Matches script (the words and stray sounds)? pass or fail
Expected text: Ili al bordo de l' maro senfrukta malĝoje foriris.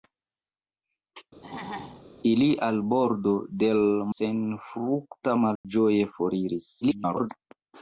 fail